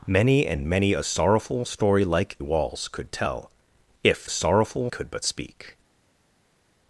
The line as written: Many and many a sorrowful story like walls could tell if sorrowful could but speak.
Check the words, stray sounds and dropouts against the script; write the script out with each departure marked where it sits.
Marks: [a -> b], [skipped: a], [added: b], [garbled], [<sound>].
Many and many a sorrowful story like walls could tell if sorrowful could but speak.